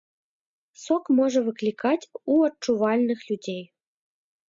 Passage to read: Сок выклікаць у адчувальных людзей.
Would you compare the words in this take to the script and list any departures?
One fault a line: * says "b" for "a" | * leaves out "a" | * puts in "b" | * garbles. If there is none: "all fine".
* puts in "можа"